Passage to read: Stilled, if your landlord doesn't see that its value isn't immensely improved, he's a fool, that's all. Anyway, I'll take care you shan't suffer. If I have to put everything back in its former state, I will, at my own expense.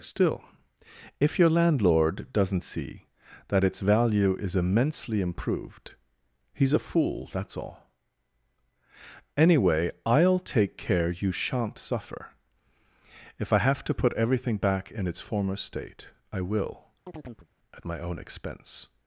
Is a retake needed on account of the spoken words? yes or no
yes